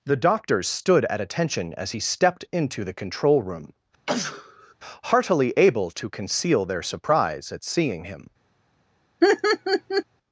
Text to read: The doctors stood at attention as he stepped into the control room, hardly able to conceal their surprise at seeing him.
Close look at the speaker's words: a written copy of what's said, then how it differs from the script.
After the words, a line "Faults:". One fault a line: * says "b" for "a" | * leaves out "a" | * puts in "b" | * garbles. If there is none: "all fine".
The doctors stood at attention as he stepped into the control room, heartily able to conceal their surprise at seeing him.
Faults:
* says "heartily" for "hardly"